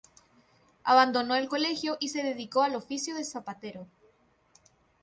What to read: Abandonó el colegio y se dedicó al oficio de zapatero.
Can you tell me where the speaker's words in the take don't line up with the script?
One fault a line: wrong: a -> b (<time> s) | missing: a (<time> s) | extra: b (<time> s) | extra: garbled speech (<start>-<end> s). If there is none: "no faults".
no faults